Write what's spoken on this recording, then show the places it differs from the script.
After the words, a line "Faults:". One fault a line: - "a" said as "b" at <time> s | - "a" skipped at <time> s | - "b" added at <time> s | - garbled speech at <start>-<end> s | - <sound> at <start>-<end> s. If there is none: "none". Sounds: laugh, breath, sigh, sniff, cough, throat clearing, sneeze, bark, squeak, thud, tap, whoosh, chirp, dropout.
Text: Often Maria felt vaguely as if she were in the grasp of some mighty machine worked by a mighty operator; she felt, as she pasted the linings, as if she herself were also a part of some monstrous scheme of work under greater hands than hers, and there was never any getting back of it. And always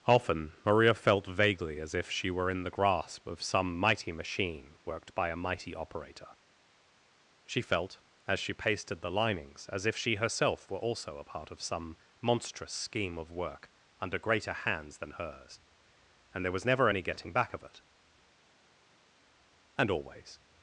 Often Maria felt vaguely as if she were in the grasp of some mighty machine worked by a mighty operator; she felt, as she pasted the linings, as if she herself were also a part of some monstrous scheme of work under greater hands than hers, and there was never any getting back of it. And always
Faults:
none